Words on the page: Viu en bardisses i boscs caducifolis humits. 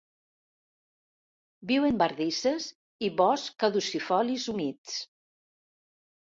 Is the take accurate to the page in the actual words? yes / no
yes